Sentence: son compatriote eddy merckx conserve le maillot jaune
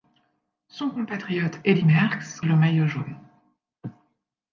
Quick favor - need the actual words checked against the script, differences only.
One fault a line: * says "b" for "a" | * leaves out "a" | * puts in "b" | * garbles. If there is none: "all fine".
* leaves out "conserve"